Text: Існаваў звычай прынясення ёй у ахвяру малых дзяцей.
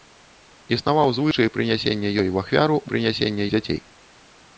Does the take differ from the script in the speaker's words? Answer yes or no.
yes